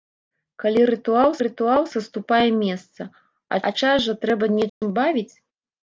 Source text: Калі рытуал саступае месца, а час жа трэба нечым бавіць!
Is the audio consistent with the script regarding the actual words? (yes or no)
no